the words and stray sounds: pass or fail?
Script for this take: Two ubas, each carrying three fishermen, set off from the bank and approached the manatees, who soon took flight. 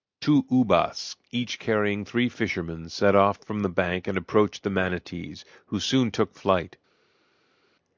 pass